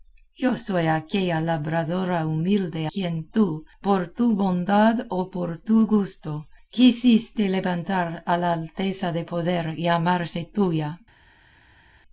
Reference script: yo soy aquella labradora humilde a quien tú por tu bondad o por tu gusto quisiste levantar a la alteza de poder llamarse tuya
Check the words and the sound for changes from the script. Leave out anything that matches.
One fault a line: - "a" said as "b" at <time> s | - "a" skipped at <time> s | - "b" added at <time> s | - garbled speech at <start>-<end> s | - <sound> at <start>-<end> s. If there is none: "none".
- "a" skipped at 2.9 s